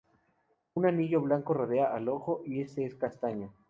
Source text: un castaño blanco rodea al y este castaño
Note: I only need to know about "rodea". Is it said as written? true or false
true